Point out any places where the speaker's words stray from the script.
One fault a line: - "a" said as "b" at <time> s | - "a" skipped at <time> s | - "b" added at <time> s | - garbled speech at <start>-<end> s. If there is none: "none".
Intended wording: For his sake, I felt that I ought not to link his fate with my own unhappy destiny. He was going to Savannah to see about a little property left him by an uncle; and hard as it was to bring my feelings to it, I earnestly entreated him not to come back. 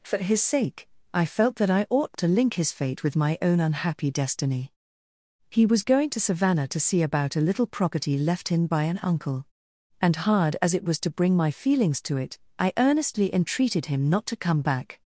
- "not" skipped at 2.2 s